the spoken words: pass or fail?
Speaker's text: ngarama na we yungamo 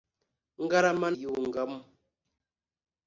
fail